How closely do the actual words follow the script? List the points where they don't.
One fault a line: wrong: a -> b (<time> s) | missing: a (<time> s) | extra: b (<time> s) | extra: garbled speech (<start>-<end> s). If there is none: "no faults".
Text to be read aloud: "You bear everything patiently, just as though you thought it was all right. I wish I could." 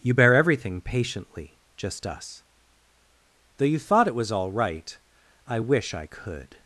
wrong: as -> us (2.1 s)